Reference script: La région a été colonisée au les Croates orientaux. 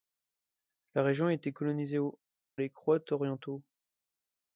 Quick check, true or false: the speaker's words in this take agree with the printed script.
true